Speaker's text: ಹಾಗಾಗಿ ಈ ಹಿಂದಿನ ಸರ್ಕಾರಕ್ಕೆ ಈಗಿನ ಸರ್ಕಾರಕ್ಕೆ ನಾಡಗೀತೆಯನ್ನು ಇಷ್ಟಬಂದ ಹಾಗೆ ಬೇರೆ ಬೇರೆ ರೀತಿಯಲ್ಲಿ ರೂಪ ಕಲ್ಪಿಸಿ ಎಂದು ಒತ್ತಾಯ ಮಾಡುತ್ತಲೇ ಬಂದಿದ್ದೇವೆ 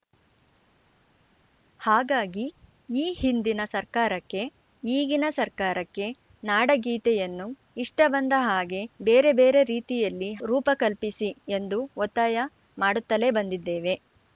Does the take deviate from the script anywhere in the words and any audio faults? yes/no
no